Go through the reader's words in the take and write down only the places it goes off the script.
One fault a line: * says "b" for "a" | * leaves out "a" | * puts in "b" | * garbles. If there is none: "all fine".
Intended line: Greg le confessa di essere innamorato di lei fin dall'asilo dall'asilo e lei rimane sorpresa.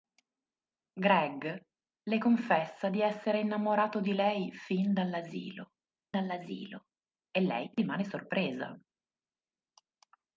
all fine